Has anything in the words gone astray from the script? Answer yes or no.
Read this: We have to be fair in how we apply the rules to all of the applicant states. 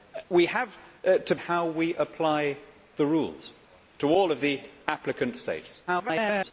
yes